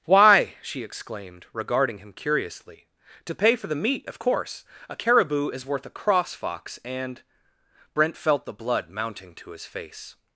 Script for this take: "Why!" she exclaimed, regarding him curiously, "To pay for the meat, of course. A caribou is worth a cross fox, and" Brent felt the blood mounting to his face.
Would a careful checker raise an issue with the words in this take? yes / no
no